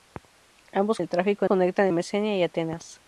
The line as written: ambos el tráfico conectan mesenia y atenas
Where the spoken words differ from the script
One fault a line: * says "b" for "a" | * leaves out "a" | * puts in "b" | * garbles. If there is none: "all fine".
all fine